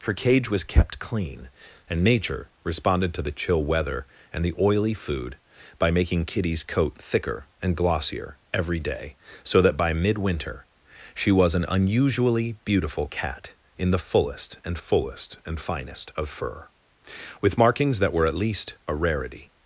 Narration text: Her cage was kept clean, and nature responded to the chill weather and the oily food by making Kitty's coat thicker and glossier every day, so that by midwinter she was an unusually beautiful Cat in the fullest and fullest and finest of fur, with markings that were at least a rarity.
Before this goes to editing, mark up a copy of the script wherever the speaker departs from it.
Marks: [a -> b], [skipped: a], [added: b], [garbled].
Her cage was kept clean, and nature responded to the chill weather and the oily food by making Kitty's coat thicker and glossier every day, so that by midwinter she was an unusually beautiful Cat in the fullest and fullest and finest of fur, with markings that were at least a rarity.